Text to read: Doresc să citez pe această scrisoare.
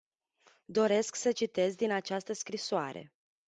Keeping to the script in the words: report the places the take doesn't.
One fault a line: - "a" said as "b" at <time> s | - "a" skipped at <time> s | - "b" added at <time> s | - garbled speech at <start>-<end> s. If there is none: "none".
- "pe" said as "din" at 1.8 s